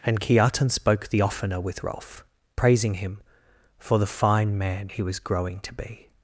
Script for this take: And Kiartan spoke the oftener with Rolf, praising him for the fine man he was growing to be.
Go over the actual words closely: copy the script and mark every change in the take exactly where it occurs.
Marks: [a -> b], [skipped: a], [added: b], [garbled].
And Kiartan spoke the oftener with Rolf, praising him for the fine man he was growing to be.